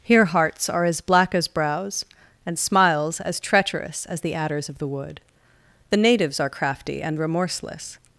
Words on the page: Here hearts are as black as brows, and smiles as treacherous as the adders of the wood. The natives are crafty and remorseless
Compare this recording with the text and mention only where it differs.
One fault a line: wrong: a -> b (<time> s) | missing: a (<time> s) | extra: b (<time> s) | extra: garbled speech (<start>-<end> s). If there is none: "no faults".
no faults